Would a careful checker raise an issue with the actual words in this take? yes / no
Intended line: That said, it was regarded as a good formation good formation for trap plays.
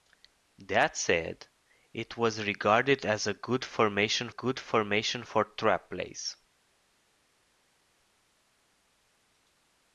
no